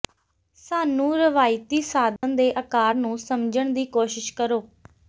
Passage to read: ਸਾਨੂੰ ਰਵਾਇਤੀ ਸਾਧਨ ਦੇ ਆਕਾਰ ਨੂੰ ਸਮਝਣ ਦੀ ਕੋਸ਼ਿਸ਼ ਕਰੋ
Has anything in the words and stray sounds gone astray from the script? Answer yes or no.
yes